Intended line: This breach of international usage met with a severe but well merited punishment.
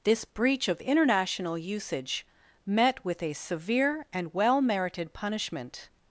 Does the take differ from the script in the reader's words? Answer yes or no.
yes